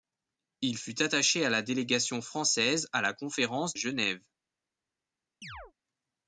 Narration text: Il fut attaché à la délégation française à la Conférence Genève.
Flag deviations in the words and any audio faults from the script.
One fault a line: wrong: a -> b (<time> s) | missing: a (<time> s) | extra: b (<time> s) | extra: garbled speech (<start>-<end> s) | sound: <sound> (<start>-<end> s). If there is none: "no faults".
sound: chirp (5.4-5.7 s)